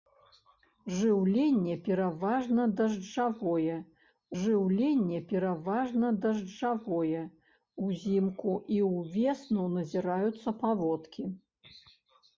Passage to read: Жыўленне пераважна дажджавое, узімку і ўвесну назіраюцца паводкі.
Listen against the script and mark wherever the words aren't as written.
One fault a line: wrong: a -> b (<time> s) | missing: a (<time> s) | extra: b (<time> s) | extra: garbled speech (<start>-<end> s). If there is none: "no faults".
extra: жыўленне пераважна дажджавое (4.4 s)